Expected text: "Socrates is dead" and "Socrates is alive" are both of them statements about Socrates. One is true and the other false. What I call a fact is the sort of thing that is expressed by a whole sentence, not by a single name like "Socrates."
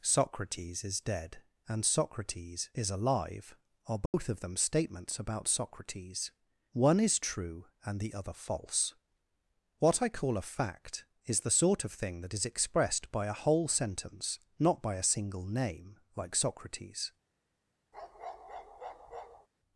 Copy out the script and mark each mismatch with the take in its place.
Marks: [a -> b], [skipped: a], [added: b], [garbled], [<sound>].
"Socrates is dead" and "Socrates is alive" are both [dropout] of them statements about Socrates. One is true and the other false. What I call a fact is the sort of thing that is expressed by a whole sentence, not by a single name like "Socrates." [bark]